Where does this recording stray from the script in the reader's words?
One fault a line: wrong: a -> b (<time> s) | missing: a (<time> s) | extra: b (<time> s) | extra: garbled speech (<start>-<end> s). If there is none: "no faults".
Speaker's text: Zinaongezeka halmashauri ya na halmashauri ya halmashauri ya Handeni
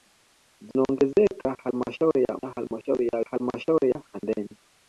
no faults